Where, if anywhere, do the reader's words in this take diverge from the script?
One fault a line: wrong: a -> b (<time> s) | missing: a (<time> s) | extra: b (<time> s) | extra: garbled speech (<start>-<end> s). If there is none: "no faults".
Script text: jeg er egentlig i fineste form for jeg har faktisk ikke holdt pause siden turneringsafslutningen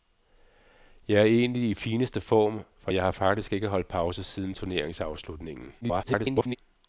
extra: garbled speech (5.8-6.6 s)